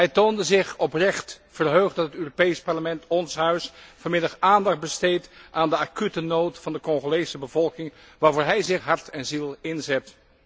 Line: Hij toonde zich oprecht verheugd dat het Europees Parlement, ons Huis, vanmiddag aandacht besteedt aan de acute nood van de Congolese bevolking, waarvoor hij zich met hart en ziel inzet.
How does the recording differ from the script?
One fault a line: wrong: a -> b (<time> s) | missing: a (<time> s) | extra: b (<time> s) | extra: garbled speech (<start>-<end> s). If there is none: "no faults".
missing: met (8.8 s)